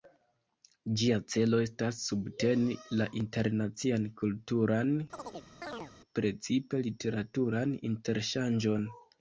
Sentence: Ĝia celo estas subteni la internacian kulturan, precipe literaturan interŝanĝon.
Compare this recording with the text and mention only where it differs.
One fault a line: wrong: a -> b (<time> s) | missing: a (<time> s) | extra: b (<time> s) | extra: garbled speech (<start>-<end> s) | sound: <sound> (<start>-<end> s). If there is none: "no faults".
sound: chirp (5.1-5.9 s)